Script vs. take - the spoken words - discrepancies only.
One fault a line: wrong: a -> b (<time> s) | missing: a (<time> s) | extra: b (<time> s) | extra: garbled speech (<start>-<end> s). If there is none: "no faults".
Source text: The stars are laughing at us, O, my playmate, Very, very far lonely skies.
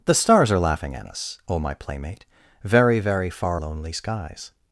no faults